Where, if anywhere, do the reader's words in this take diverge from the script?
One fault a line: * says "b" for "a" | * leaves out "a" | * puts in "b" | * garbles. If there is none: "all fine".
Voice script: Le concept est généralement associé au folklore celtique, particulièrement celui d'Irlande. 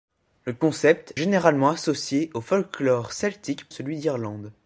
* leaves out "est"
* leaves out "particulièrement"